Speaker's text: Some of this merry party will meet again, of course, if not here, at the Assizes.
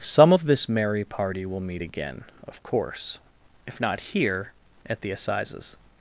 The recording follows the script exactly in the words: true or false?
true